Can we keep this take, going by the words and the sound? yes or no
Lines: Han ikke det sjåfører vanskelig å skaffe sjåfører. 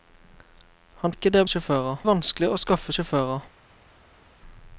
yes